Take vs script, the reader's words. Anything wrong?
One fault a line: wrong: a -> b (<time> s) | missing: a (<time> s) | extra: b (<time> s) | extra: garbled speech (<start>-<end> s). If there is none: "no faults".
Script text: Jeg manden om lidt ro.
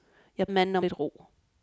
no faults